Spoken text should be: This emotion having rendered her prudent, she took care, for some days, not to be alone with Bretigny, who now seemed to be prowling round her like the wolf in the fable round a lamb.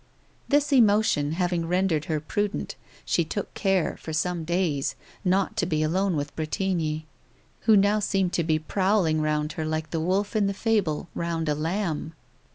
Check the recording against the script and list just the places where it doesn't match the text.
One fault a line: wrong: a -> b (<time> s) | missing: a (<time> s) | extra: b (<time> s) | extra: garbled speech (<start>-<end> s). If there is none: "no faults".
no faults